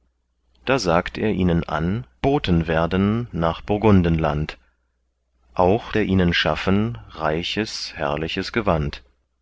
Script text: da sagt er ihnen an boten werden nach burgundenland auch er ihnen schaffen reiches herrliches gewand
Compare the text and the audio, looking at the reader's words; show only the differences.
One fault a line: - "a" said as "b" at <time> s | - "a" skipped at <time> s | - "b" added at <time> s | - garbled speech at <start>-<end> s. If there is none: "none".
none